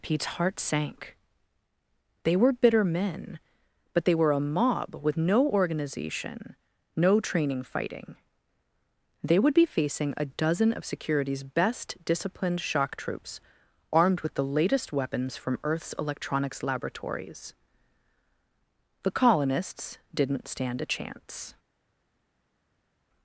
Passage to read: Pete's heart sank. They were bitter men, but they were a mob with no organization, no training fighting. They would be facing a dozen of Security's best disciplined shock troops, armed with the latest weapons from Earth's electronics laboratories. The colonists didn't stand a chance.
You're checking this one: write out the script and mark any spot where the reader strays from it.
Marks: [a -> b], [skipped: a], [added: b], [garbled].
Pete's heart sank. They were bitter men, but they were a mob with no organization, no training fighting. They would be facing a dozen of Security's best disciplined shock troops, armed with the latest weapons from Earth's electronics laboratories. The colonists didn't stand a chance.